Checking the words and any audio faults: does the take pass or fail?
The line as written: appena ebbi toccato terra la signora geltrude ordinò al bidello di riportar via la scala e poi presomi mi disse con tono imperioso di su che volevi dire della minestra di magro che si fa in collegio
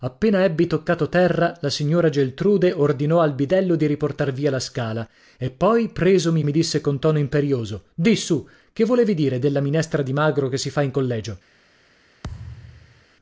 fail